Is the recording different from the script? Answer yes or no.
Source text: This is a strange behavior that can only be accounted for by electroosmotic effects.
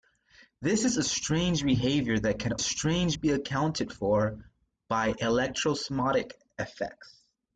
yes